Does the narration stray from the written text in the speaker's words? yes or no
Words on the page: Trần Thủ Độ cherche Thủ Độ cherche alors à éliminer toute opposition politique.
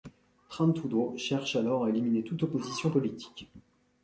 yes